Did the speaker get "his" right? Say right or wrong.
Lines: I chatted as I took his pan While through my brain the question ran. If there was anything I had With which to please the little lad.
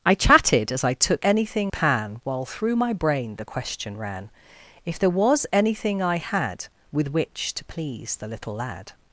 wrong